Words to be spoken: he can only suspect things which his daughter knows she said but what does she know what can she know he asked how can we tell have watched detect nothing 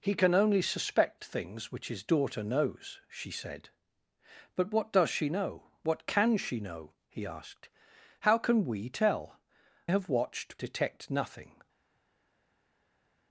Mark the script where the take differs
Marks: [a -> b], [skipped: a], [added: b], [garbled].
he can only suspect things which his daughter knows she said but what does she know what can she know he asked how can we tell have watched detect nothing